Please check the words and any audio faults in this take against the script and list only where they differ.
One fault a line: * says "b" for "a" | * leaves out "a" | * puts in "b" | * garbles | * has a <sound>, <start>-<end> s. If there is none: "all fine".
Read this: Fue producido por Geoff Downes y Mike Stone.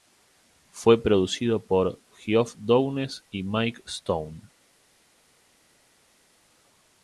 all fine